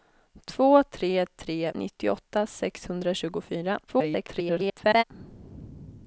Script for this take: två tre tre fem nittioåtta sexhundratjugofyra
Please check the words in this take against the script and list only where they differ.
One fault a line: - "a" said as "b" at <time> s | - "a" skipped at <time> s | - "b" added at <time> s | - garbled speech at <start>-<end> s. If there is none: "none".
- "fem" skipped at 1.7 s
- garbled speech at 3.9-5.0 s